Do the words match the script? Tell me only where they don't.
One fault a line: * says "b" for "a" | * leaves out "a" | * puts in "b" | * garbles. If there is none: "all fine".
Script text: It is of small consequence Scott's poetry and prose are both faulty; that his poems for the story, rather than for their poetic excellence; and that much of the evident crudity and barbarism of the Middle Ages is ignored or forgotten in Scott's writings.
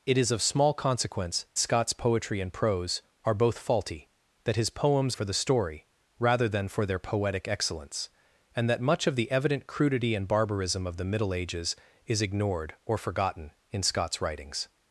all fine